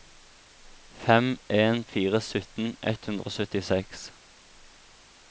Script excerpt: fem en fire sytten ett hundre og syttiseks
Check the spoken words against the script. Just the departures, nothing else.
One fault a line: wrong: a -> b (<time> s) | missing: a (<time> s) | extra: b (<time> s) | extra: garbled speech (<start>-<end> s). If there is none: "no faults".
no faults